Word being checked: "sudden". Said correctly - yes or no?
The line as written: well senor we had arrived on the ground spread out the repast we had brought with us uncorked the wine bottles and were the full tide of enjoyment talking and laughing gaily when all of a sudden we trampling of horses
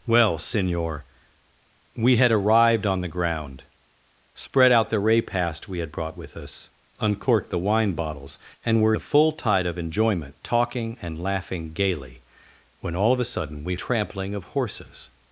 yes